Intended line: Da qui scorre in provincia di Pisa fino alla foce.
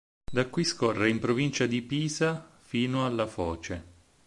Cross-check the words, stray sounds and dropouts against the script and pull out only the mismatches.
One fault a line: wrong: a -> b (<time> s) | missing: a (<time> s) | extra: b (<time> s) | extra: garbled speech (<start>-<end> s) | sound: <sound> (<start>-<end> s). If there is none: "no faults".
no faults